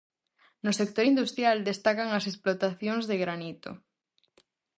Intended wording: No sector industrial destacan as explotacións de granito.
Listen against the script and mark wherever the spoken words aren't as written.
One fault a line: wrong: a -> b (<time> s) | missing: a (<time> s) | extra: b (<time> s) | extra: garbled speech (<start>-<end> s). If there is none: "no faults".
no faults